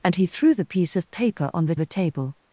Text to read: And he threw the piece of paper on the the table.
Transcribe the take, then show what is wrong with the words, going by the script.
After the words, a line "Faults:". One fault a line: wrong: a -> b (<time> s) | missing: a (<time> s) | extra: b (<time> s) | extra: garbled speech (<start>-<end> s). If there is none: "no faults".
And he threw the piece of paper on the the table.
Faults:
no faults